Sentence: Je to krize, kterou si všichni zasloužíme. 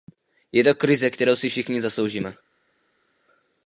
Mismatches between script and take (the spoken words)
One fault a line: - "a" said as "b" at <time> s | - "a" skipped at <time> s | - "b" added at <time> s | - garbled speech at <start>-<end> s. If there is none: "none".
none